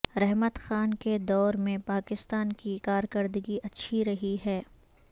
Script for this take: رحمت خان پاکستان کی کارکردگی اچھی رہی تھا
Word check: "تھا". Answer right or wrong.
wrong